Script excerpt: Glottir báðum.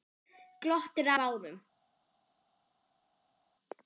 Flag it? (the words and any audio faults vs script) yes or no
no